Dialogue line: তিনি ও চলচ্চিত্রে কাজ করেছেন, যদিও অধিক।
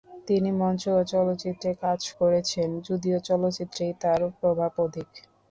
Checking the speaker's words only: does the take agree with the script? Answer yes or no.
no